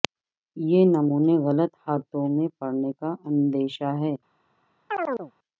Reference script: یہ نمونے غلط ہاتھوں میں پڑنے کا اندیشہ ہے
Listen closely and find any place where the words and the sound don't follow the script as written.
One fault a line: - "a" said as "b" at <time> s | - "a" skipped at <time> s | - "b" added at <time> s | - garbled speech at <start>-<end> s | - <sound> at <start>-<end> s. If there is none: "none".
- chirp at 4.9-5.3 s